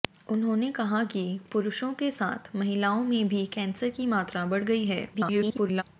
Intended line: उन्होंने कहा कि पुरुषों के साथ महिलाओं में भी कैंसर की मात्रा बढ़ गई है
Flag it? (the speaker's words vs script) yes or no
yes